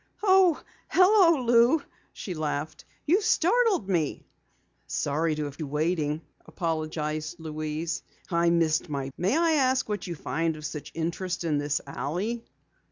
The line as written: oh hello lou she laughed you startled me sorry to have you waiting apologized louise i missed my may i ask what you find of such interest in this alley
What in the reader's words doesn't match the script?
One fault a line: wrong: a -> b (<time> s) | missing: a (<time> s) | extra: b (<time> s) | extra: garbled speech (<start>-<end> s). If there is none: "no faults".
no faults